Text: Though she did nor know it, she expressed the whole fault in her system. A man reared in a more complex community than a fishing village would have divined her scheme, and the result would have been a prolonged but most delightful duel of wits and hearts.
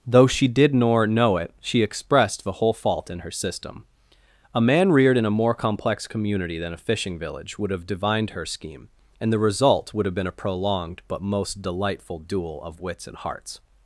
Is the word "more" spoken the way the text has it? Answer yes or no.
yes